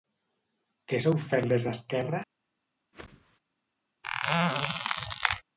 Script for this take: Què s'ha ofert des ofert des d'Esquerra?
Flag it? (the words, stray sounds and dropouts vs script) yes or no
yes